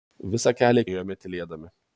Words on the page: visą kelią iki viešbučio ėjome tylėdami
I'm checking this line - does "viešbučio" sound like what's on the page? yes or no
no